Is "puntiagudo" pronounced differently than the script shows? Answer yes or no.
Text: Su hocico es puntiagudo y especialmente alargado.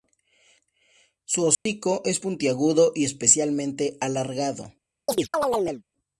no